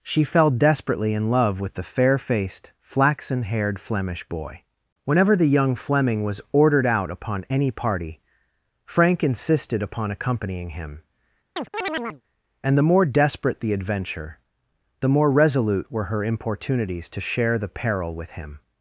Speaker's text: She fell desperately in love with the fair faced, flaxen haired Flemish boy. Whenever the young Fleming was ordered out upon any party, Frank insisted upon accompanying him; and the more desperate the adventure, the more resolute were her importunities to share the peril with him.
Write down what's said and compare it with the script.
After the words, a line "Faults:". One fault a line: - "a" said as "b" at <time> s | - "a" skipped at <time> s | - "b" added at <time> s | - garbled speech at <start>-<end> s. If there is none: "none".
She fell desperately in love with the fair faced, flaxen haired Flemish boy. Whenever the young Fleming was ordered out upon any party, Frank insisted upon accompanying him; and the more desperate the adventure, the more resolute were her importunities to share the peril with him.
Faults:
none